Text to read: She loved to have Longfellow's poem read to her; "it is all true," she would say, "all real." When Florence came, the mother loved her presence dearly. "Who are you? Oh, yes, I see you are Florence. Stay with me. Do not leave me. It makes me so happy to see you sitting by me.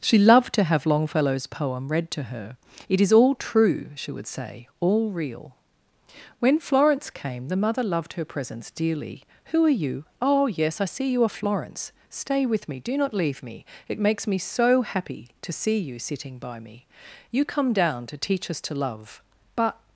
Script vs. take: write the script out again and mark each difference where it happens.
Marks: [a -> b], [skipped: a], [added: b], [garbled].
She loved to have Longfellow's poem read to her; "it is all true," she would say, "all real." When Florence came, the mother loved her presence dearly. "Who are you? Oh, yes, I see you are Florence. Stay with me. Do not leave me. It makes me so happy to see you sitting by me. [added: You come down to teach us to love but]